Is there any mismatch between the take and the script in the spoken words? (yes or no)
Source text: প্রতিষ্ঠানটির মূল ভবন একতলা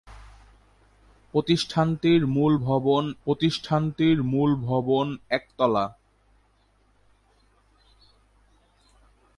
yes